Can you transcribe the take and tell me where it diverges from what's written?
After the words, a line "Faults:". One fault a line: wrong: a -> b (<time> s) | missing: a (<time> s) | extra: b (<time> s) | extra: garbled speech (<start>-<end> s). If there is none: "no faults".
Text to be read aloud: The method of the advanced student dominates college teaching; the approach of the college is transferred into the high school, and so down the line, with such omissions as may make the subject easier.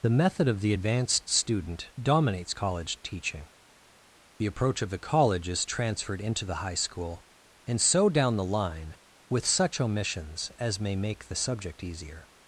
The method of the advanced student dominates college teaching; the approach of the college is transferred into the high school, and so down the line, with such omissions as may make the subject easier.
Faults:
no faults